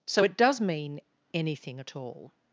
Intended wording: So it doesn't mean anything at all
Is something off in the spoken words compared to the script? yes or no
yes